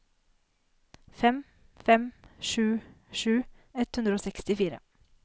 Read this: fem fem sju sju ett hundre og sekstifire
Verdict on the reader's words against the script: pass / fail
pass